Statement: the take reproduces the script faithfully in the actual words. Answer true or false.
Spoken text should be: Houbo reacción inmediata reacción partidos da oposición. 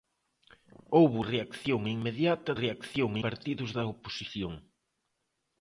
true